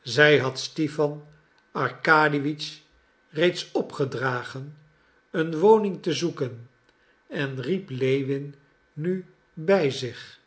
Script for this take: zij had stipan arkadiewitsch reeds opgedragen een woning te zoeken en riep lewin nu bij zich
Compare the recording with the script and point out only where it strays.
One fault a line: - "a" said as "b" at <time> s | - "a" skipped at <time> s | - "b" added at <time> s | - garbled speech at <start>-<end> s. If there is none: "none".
none